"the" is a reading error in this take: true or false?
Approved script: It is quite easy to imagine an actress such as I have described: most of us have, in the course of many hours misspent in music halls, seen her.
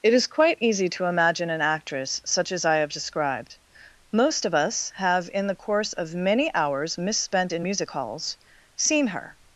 false